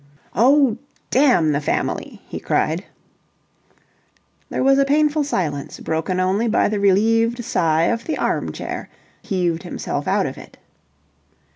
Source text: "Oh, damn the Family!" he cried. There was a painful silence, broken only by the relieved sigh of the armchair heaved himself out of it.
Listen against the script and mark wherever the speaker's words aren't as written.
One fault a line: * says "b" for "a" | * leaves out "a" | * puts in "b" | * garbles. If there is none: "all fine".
all fine